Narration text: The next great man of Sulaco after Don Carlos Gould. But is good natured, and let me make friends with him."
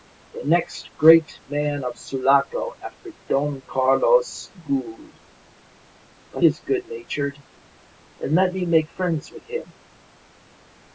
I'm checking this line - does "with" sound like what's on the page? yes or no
yes